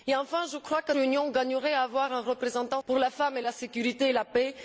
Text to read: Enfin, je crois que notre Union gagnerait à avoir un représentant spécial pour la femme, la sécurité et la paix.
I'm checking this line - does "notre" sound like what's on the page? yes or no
no